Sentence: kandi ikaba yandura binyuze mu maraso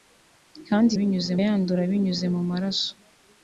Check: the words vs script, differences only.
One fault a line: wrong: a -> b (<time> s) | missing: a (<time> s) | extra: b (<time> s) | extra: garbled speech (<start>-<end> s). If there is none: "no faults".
wrong: ikaba -> binyuze (1.0 s)